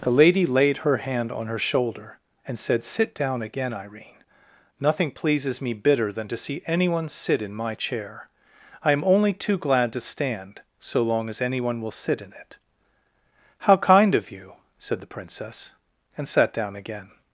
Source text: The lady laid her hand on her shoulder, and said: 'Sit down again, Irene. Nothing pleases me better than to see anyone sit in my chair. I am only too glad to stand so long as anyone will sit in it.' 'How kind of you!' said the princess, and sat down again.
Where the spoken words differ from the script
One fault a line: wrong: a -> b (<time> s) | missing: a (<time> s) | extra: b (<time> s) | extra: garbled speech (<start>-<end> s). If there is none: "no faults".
wrong: better -> bitter (5.7 s)